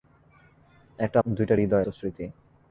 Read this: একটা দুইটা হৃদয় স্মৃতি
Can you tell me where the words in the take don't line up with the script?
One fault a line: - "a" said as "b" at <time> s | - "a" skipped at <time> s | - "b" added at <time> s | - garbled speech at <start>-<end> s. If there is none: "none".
none